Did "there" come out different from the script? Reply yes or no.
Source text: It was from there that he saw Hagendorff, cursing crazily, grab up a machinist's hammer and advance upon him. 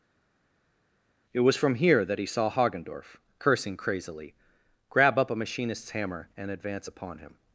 yes